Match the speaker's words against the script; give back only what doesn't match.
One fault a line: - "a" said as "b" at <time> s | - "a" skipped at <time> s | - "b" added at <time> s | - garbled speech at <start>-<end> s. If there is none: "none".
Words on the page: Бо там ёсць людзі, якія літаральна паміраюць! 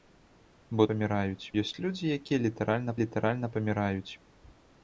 - "там" said as "паміраюць" at 0.9 s
- "літаральна" added at 3.0 s